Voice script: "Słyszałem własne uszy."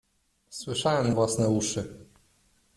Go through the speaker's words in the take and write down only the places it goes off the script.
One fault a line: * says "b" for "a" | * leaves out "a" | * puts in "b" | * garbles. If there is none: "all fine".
all fine